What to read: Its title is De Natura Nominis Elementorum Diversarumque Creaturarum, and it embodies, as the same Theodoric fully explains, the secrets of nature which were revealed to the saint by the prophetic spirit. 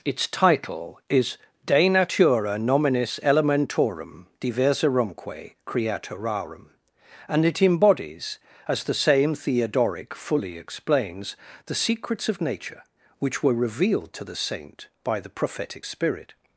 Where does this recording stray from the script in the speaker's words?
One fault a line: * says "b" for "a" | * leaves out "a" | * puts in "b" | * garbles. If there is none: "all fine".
all fine